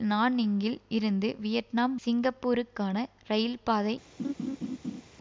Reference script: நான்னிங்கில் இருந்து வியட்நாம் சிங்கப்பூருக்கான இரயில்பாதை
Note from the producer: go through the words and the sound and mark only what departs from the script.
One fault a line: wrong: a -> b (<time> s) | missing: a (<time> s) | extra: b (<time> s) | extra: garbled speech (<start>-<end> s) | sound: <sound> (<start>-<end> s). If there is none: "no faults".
sound: laugh (4.2-5.0 s)